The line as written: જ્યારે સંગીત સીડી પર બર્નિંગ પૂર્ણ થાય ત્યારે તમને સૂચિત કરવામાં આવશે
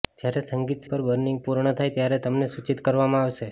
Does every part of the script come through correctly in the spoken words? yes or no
no